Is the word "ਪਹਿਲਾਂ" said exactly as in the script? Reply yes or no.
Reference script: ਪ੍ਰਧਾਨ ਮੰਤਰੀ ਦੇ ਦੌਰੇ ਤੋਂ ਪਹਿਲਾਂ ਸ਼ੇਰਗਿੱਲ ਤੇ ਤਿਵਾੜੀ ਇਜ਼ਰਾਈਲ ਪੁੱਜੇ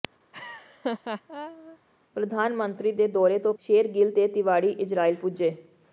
no